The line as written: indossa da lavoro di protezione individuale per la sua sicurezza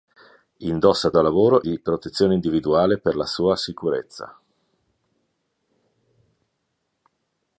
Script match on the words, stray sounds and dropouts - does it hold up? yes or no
yes